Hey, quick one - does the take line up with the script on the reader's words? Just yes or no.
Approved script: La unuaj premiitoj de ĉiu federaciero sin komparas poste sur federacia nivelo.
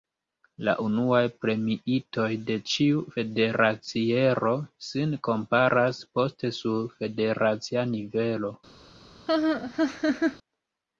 yes